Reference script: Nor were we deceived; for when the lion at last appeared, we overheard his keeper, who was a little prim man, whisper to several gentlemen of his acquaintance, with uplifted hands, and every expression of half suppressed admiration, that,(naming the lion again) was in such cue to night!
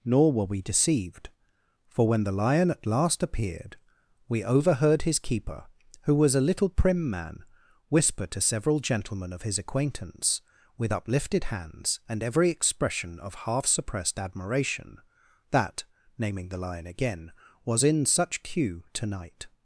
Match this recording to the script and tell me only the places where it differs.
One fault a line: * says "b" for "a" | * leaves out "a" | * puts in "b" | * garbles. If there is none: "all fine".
all fine